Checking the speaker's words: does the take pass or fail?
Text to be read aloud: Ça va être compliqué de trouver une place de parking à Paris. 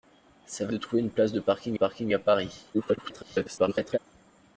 fail